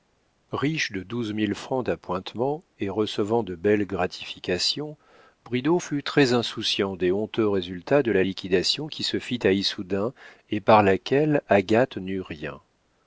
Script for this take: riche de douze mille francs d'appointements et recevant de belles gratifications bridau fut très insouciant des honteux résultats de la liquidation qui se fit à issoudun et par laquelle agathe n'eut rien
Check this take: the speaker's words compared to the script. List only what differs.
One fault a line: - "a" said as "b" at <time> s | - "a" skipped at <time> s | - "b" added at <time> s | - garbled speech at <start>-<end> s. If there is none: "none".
none